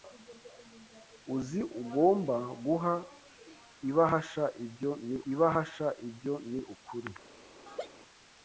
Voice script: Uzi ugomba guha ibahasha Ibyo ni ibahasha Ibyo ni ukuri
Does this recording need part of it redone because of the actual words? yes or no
no